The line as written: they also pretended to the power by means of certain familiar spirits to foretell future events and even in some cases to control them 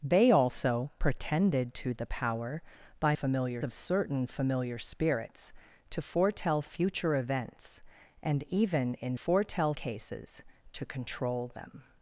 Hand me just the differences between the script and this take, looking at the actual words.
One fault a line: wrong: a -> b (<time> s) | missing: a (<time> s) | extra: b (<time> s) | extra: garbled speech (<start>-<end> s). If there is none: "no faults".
wrong: means -> familiar (3.1 s)
wrong: some -> foretell (9.1 s)